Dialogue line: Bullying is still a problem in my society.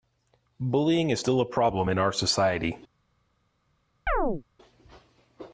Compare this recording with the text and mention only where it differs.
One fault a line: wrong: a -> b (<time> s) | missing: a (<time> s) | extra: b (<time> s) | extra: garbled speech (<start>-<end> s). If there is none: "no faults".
wrong: my -> our (2.0 s)